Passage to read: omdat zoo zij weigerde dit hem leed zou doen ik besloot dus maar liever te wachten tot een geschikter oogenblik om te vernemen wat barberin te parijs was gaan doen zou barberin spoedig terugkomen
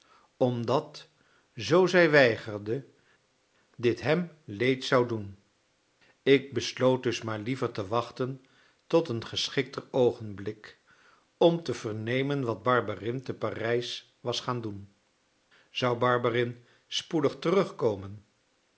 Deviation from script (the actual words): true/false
false